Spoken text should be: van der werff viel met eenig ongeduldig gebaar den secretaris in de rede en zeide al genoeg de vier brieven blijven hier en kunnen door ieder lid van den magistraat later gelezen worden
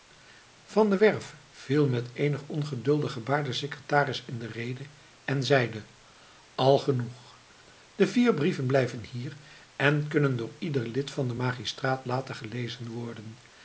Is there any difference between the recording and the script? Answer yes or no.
no